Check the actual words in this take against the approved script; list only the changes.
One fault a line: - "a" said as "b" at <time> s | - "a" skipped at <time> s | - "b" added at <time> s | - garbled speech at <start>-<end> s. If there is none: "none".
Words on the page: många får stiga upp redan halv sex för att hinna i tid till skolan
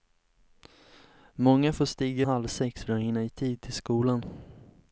- "upp redan" skipped at 2.3 s